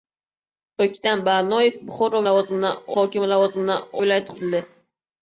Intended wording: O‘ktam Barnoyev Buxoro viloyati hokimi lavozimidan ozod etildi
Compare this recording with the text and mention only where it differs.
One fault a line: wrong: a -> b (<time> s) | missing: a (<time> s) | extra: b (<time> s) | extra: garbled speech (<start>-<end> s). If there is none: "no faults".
wrong: viloyati -> lavozimidan (2.3 s)
wrong: ozod -> viloyati (4.0 s)